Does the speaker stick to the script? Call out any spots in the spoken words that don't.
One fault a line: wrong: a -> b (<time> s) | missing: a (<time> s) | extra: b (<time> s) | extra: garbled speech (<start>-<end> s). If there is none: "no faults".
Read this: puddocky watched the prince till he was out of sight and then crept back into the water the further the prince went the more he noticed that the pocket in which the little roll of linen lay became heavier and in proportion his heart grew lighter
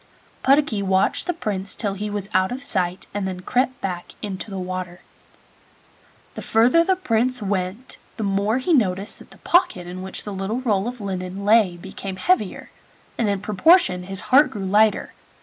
no faults